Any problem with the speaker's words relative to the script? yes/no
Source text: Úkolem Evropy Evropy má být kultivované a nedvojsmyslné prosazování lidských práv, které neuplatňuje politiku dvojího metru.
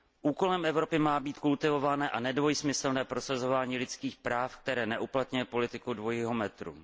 yes